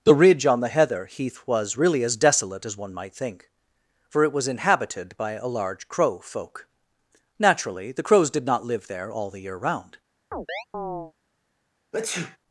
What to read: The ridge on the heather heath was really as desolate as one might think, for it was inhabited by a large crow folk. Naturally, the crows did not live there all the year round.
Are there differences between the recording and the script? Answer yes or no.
no